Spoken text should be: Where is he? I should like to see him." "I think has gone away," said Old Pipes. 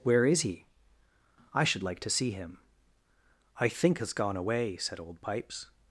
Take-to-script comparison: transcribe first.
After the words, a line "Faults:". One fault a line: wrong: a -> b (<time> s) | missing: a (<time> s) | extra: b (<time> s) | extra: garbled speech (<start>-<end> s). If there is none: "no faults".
Where is he? I should like to see him." "I think has gone away," said Old Pipes.
Faults:
no faults